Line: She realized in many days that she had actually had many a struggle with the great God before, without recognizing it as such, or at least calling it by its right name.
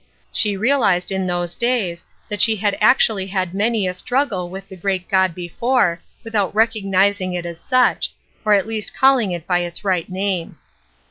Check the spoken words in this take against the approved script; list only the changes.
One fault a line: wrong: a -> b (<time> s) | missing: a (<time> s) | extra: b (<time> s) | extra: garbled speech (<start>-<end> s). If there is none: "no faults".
wrong: many -> those (1.3 s)